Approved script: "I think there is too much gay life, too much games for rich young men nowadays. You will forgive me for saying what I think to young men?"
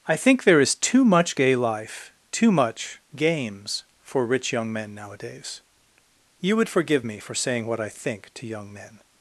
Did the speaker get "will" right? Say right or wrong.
wrong